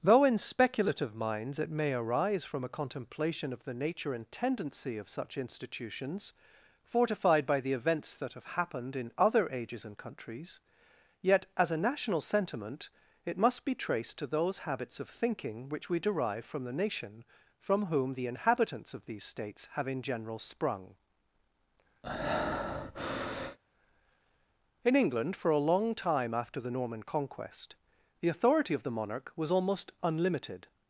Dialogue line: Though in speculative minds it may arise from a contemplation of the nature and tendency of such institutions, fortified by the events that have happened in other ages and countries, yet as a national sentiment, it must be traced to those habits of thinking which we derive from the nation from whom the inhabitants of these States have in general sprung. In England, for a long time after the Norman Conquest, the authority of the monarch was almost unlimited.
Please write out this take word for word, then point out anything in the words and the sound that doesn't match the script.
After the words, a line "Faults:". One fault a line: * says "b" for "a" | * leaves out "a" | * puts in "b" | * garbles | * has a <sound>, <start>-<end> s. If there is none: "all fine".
Though in speculative minds it may arise from a contemplation of the nature and tendency of such institutions, fortified by the events that have happened in other ages and countries, yet as a national sentiment, it must be traced to those habits of thinking which we derive from the nation from whom the inhabitants of these States have in general sprung. In England, for a long time after the Norman Conquest, the authority of the monarch was almost unlimited.
Faults:
* has a breath, 22.0-23.6 s